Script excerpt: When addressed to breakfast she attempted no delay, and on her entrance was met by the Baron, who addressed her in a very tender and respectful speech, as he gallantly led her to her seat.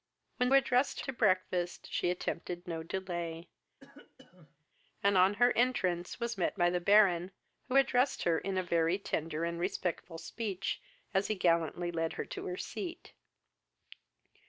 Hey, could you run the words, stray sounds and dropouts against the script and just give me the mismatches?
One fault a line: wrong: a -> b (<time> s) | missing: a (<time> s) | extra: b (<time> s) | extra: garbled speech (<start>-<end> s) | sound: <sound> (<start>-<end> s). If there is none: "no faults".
sound: cough (3.8-4.7 s)